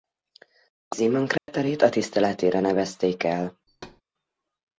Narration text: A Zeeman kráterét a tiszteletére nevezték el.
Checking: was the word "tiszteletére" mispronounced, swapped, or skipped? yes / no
no